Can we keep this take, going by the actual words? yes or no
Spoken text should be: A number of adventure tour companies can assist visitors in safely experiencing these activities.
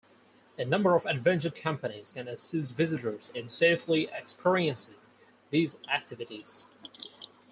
no